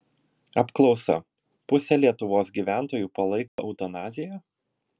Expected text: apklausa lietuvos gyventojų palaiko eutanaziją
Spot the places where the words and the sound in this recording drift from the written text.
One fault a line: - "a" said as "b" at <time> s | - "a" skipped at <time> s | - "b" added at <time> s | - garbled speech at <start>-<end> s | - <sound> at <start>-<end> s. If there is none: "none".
- "pusė" added at 1.7 s
- dropout at 3.5-3.6 s